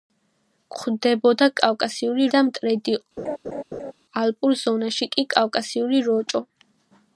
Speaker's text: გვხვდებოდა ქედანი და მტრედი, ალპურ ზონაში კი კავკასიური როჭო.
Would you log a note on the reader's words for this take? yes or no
yes